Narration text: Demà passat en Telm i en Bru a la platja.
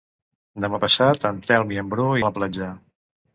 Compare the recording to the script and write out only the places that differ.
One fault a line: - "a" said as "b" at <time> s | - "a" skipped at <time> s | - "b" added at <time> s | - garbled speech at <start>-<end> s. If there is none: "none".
none